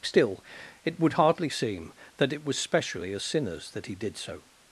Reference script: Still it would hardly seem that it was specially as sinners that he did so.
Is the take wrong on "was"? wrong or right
right